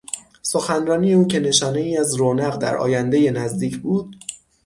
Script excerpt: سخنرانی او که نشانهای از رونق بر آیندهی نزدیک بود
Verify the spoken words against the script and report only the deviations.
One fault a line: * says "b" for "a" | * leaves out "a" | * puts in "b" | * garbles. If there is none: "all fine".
* says "در" for "بر"